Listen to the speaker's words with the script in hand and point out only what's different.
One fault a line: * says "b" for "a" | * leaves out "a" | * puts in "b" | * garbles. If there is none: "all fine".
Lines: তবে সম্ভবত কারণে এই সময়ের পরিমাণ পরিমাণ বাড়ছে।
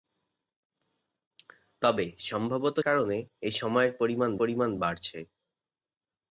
all fine